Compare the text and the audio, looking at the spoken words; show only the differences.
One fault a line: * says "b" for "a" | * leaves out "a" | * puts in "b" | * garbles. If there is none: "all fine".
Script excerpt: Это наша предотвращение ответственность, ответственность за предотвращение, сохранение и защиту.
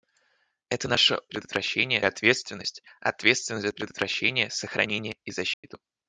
all fine